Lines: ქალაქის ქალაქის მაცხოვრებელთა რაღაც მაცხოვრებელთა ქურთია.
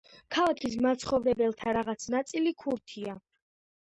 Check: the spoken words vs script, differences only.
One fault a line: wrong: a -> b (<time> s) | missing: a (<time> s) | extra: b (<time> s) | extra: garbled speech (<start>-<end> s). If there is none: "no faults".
missing: ქალაქის (0.8 s)
wrong: მაცხოვრებელთა -> ნაწილი (2.1 s)